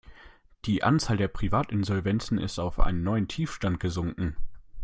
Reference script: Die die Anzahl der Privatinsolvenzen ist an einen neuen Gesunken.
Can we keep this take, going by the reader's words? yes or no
no